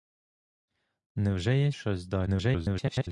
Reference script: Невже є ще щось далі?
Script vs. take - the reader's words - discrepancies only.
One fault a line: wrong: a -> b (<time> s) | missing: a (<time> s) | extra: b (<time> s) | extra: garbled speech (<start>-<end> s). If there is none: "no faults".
missing: ще (1.7 s)
extra: garbled speech (2.3-3.1 s)